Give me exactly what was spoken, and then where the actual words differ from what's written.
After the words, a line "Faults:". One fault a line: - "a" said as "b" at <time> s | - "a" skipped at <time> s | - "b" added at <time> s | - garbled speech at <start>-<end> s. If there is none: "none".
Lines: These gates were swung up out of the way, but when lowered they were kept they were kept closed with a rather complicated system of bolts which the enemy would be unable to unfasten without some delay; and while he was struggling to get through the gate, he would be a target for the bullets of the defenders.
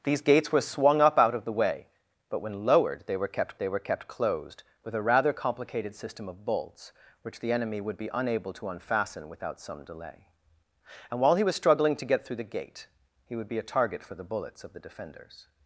These gates were swung up out of the way, but when lowered they were kept they were kept closed with a rather complicated system of bolts which the enemy would be unable to unfasten without some delay; and while he was struggling to get through the gate, he would be a target for the bullets of the defenders.
Faults:
none